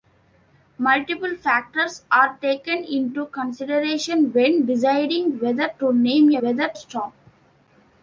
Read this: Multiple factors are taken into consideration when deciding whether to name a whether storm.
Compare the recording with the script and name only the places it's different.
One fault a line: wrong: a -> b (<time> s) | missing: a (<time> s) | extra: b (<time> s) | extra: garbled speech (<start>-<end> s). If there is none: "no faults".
no faults